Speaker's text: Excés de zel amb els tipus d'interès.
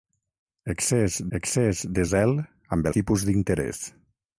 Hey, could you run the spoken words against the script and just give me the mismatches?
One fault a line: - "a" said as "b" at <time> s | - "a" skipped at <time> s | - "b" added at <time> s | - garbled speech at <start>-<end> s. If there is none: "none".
- "excés" added at 1.4 s
- "els" skipped at 2.9 s